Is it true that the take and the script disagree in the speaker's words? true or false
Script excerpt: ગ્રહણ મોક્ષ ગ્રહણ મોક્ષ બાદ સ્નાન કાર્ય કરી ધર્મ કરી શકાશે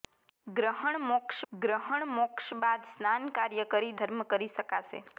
false